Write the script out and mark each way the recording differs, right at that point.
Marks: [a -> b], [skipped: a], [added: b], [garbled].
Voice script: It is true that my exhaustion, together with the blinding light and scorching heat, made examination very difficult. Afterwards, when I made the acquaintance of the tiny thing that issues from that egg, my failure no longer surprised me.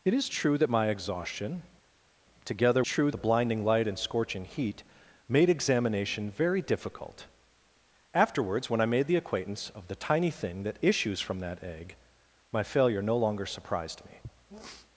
It is true that my exhaustion, together [with -> true] the blinding light and scorching heat, made examination very difficult. Afterwards, when I made the acquaintance of the tiny thing that issues from that egg, my failure no longer surprised me.